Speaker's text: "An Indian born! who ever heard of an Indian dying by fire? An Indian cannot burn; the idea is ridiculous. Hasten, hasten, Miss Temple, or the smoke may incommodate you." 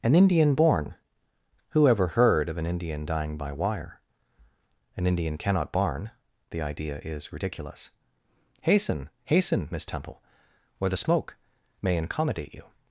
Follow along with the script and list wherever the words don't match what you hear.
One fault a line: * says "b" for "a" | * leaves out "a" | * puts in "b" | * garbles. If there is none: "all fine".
* says "wire" for "fire"
* says "barn" for "burn"